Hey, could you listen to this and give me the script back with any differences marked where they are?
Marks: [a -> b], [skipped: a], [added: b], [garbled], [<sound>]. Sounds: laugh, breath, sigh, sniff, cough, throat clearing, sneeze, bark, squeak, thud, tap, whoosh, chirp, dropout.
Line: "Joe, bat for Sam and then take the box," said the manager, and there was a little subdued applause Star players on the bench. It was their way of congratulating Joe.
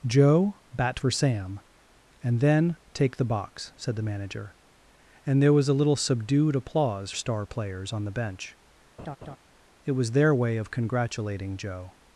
"Joe, bat for Sam and then take the box," said the manager, and there was a little subdued applause Star players on the bench. [laugh] It was their way of congratulating Joe.